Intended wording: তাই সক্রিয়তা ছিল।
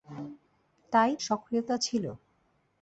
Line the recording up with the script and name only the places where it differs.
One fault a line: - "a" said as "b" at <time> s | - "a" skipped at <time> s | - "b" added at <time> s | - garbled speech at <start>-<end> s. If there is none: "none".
none